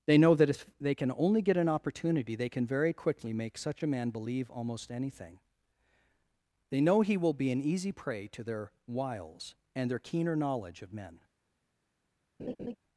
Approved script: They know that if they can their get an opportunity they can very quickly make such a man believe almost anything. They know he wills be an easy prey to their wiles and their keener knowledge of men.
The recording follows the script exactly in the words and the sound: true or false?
false